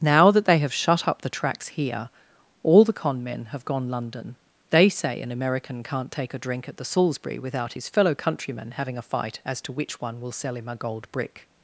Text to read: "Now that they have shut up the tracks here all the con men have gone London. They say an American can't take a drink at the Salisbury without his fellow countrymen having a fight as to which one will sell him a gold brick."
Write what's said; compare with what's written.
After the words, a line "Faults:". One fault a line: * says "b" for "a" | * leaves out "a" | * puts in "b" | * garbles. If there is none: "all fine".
"Now that they have shut up the tracks here all the con men have gone London. They say an American can't take a drink at the Salisbury without his fellow countrymen having a fight as to which one will sell him a gold brick."
Faults:
all fine